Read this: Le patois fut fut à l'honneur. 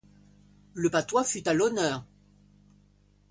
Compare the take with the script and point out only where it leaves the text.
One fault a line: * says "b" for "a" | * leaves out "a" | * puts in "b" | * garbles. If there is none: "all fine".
* leaves out "fut"